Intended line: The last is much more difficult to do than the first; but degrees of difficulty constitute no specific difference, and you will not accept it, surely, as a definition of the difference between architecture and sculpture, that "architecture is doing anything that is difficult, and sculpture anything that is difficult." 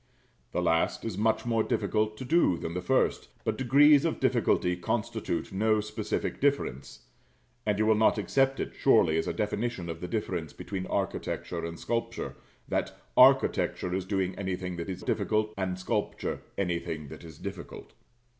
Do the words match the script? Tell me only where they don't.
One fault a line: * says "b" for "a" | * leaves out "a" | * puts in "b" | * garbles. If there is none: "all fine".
all fine